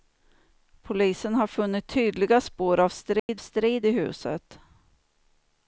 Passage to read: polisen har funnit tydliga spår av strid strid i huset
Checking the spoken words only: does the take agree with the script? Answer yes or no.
yes